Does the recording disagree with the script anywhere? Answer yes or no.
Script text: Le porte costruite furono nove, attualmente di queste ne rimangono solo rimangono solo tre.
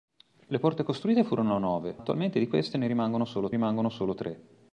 no